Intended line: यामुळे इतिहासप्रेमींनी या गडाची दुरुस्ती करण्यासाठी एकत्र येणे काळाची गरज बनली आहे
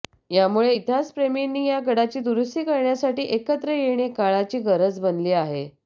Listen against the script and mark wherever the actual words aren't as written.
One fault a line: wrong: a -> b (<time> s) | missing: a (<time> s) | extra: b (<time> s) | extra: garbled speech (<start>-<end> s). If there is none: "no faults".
no faults